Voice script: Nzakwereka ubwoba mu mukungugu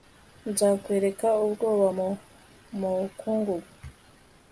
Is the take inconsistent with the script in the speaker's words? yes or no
no